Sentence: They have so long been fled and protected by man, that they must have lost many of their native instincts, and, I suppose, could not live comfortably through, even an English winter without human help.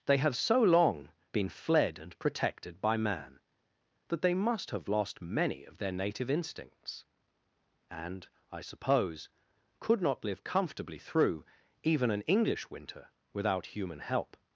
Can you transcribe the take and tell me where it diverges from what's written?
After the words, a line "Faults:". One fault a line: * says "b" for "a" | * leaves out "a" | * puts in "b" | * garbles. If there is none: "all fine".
They have so long been fled and protected by man, that they must have lost many of their native instincts, and, I suppose, could not live comfortably through, even an English winter without human help.
Faults:
all fine